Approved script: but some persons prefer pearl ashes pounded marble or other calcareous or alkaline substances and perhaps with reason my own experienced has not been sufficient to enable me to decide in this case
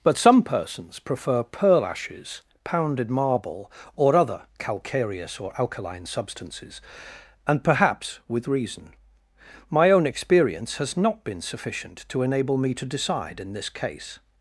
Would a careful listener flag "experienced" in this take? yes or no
yes